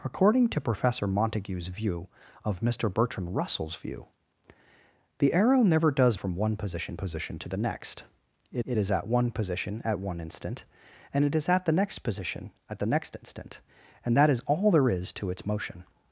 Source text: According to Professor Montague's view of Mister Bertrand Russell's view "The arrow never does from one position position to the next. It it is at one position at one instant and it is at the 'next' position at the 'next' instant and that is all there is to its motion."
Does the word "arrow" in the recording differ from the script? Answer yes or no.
no